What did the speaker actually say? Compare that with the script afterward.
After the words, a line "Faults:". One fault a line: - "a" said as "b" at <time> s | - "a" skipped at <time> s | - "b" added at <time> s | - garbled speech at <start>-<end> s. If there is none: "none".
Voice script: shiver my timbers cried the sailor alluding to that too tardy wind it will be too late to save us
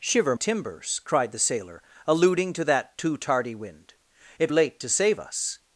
shiver timbers cried the sailor alluding to that too tardy wind it late to save us
Faults:
- "my" skipped at 0.3 s
- "will be too" skipped at 4.5 s